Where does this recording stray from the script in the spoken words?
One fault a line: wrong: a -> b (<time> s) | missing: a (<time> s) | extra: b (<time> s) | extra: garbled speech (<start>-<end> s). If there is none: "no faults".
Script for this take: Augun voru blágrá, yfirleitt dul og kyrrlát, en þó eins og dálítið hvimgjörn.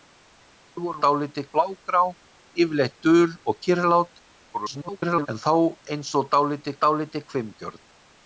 wrong: voru -> dálítið (1.0 s)
extra: garbled speech (4.5-5.3 s)
extra: dálítið (6.8 s)